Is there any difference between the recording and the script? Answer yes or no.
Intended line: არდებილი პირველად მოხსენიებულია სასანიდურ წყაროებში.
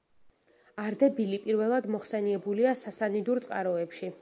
no